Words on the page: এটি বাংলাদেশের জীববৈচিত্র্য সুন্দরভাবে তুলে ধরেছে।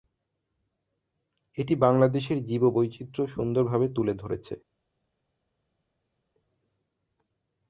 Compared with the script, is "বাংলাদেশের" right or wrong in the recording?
right